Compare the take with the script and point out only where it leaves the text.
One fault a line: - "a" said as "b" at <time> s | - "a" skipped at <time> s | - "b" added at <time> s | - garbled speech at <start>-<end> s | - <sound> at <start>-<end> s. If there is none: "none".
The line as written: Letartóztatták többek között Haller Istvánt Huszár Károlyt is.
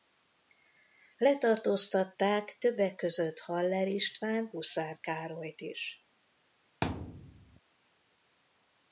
- thud at 6.8-7.6 s